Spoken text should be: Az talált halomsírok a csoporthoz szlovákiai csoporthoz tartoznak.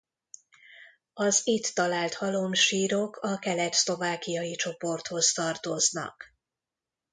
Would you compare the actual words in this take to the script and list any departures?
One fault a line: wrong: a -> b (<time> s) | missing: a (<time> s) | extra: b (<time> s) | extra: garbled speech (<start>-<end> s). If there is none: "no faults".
extra: itt (1.4 s)
wrong: csoporthoz -> kelet (3.4 s)